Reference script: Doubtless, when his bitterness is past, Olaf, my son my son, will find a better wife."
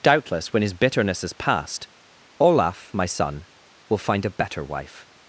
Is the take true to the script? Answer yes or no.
no